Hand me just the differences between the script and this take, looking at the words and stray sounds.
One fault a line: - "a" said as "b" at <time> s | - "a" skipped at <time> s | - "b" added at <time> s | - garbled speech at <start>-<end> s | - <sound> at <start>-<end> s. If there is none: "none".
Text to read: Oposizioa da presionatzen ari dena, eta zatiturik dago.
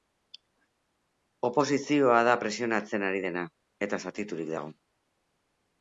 none